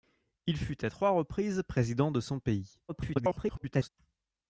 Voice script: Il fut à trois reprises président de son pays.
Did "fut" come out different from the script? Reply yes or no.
no